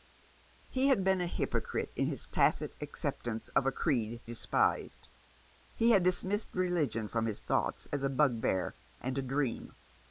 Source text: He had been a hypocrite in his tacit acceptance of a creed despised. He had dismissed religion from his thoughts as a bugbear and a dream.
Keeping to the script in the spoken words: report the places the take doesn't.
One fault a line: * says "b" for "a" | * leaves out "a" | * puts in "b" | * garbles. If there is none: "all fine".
all fine